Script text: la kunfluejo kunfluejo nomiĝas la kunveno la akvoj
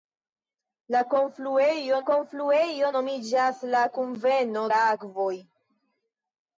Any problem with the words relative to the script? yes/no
no